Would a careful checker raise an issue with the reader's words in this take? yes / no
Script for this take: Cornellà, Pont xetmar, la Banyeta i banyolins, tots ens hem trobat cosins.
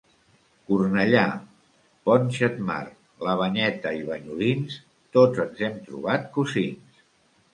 no